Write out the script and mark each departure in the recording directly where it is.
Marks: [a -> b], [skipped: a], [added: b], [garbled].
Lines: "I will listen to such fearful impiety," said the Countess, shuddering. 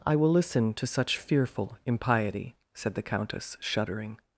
"I will listen to such fearful impiety," said the Countess, shuddering.